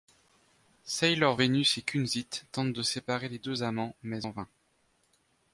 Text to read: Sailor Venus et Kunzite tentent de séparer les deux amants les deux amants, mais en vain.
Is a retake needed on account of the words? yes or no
yes